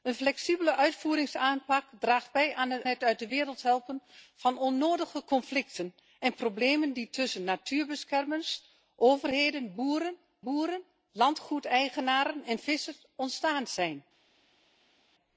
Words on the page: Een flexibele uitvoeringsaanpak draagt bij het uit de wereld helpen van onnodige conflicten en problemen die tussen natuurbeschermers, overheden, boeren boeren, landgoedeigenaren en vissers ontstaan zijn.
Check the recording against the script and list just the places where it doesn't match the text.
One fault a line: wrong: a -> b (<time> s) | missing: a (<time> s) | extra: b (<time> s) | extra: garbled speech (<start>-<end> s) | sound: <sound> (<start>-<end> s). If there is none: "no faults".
no faults